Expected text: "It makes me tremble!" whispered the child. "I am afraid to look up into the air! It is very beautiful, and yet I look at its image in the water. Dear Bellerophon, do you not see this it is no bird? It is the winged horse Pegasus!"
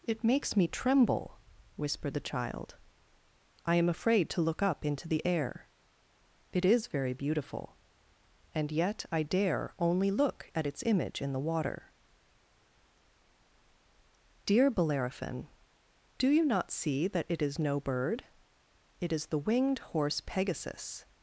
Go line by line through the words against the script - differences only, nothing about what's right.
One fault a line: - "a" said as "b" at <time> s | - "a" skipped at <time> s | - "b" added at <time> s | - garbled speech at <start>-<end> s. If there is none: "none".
- "dare only" added at 9.2 s
- "this" said as "that" at 17.1 s